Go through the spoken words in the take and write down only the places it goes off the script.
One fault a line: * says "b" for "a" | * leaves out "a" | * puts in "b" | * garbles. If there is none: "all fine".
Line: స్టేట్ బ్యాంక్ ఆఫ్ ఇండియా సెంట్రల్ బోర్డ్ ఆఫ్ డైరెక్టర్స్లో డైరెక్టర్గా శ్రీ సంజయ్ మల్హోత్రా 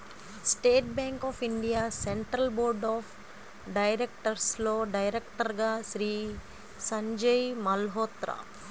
all fine